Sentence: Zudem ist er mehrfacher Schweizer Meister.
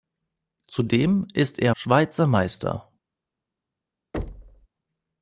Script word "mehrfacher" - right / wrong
wrong